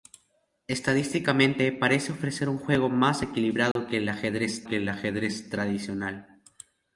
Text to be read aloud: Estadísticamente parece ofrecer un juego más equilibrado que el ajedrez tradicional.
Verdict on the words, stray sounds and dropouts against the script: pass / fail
fail